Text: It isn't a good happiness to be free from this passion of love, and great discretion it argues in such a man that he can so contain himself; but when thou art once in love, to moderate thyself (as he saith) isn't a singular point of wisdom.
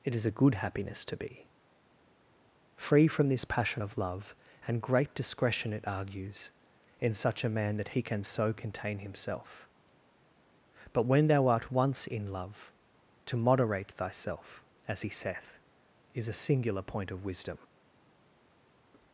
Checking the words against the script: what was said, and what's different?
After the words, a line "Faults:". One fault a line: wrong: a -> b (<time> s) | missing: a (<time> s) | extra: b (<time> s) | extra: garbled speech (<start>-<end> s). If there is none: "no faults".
It is a good happiness to be free from this passion of love, and great discretion it argues in such a man that he can so contain himself; but when thou art once in love, to moderate thyself (as he saith) is a singular point of wisdom.
Faults:
wrong: isn't -> is (0.1 s)
wrong: isn't -> is (16.1 s)